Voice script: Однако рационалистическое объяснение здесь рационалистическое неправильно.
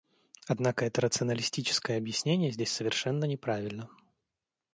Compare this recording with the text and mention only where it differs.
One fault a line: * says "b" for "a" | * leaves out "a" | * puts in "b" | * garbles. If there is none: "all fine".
* puts in "это"
* says "совершенно" for "рационалистическое"